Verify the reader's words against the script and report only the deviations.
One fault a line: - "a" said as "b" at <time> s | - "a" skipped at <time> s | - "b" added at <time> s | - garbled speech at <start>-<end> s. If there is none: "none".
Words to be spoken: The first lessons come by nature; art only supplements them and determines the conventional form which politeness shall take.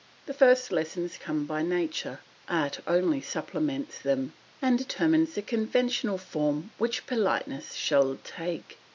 none